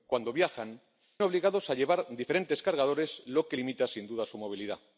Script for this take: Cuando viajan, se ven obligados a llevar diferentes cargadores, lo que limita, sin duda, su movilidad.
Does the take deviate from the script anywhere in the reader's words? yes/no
yes